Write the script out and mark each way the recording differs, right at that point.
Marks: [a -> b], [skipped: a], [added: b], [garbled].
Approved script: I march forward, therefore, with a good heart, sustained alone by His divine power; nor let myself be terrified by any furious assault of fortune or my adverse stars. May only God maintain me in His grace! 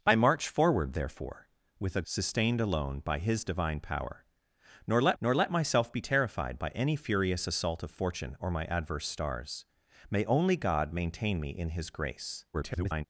I march forward, therefore, with a [skipped: good heart,] sustained alone by His divine power; nor let [added: nor let] myself be terrified by any furious assault of fortune or my adverse stars. May only God maintain me in His grace! [garbled]